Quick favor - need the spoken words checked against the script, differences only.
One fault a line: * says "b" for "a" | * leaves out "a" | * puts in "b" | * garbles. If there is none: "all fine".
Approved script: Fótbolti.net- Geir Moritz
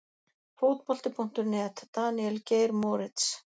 * puts in "Daníel"